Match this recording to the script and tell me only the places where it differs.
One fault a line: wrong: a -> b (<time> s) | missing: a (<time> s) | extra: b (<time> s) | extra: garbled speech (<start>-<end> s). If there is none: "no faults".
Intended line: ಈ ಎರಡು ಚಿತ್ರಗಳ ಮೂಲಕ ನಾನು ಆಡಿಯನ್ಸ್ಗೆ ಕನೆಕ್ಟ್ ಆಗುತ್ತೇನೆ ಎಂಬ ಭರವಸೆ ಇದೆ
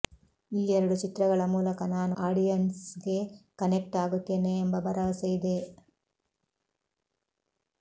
no faults